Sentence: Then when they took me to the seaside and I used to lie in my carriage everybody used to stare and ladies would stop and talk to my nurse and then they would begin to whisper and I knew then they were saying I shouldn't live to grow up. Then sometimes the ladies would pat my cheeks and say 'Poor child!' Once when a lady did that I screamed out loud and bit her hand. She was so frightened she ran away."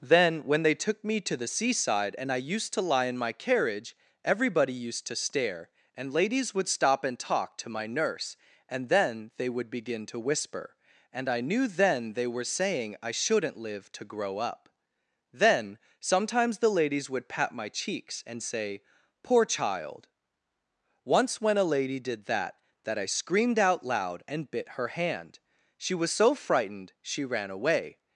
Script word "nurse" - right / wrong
right